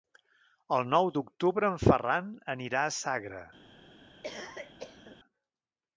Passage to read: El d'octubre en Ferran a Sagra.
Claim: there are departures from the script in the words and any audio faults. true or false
true